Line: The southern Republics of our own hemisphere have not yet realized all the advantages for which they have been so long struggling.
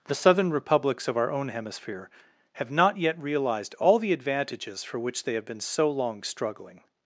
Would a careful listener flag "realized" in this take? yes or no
no